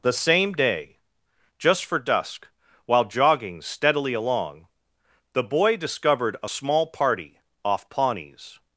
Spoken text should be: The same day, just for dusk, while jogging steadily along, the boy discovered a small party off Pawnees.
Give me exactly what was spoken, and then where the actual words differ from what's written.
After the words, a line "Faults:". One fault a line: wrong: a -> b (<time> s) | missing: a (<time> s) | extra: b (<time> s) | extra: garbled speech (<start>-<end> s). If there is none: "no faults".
The same day, just for dusk, while jogging steadily along, the boy discovered a small party off Pawnees.
Faults:
no faults